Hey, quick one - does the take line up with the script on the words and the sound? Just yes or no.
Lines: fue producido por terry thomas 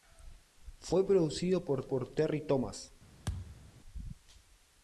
no